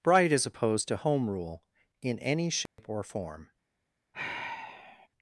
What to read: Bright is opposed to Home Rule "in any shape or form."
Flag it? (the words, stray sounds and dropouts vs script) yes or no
yes